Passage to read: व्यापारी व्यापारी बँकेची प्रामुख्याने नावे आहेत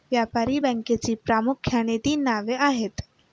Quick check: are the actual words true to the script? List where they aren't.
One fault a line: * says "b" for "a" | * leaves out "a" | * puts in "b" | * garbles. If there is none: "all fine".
* leaves out "व्यापारी"
* puts in "तीन"